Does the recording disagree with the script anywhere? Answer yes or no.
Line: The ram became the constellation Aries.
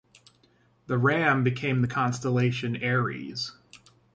no